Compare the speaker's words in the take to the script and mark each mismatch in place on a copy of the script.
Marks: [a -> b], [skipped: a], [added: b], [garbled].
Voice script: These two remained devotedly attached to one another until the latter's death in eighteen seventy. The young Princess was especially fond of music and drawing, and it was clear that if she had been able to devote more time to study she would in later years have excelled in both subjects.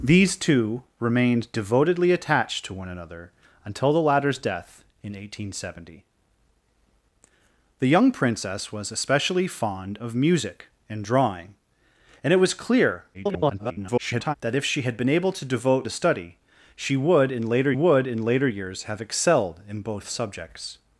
These two remained devotedly attached to one another until the latter's death in eighteen seventy. The young Princess was especially fond of music and drawing, and it was clear [garbled] that if she had been able to devote [skipped: more time] to study she would in later [added: would in later] years have excelled in both subjects.